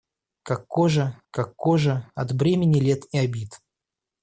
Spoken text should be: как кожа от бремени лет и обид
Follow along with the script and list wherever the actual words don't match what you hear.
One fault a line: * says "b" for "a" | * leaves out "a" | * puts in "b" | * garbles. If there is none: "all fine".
* puts in "как кожа"